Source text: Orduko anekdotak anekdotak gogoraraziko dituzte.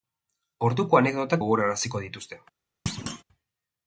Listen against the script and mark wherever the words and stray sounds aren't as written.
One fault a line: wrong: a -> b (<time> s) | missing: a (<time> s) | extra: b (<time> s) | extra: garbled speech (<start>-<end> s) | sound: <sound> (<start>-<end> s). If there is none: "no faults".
missing: anekdotak (1.4 s)
sound: thud (2.9-3.2 s)